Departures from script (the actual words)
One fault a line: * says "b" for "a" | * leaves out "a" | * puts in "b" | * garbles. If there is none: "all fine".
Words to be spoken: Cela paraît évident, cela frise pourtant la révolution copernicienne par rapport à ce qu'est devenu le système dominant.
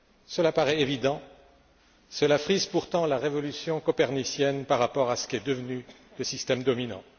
all fine